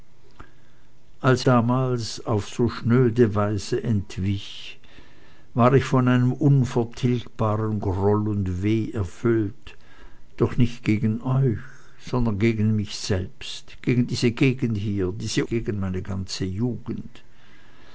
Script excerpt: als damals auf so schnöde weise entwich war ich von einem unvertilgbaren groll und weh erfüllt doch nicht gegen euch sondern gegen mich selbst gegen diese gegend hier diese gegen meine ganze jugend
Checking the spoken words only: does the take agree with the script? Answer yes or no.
yes